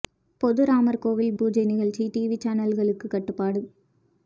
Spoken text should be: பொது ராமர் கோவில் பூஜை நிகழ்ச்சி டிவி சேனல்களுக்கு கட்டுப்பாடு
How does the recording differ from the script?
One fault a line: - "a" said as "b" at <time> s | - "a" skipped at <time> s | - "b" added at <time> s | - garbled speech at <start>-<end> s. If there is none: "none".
none